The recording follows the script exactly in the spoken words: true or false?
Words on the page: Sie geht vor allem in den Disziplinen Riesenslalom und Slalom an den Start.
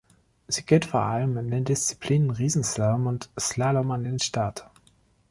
true